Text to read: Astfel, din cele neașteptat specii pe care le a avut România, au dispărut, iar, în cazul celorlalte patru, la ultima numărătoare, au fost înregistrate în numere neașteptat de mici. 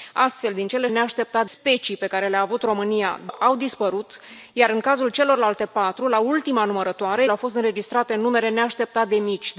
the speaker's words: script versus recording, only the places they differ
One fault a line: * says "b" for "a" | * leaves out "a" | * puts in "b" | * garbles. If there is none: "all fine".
all fine